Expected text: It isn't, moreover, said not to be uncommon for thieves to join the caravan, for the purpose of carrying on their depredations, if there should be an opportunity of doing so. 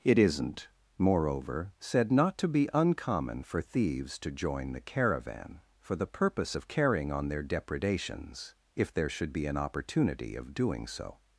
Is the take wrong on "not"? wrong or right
right